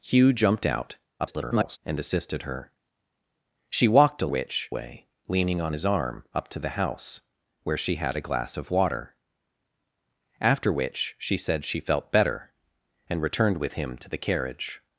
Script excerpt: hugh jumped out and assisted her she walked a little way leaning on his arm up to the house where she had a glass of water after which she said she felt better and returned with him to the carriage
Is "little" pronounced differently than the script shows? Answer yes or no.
yes